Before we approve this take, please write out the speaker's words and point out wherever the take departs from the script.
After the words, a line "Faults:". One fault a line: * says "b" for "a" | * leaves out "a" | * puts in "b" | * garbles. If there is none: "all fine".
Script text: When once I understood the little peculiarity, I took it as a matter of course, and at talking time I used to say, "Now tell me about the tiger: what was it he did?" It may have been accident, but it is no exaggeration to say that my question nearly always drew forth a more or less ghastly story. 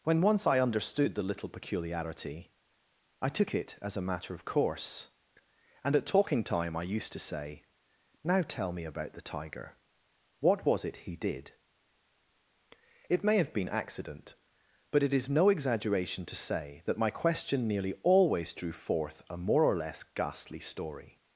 When once I understood the little peculiarity, I took it as a matter of course, and at talking time I used to say, "Now tell me about the tiger: what was it he did?" It may have been accident, but it is no exaggeration to say that my question nearly always drew forth a more or less ghastly story.
Faults:
all fine